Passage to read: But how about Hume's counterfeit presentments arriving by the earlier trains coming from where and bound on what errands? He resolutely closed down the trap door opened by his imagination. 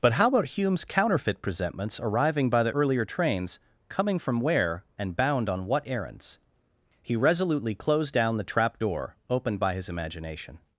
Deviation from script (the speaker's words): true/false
false